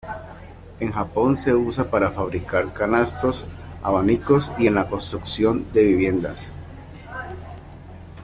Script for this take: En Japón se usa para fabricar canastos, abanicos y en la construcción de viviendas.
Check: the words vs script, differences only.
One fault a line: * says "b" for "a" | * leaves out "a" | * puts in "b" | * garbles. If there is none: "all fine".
all fine